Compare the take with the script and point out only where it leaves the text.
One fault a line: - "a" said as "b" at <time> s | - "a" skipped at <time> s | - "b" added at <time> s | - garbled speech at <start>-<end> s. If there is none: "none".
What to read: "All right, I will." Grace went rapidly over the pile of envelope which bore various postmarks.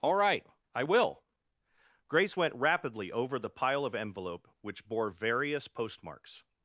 none